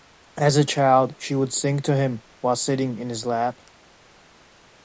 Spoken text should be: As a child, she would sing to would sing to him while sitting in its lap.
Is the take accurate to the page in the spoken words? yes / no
no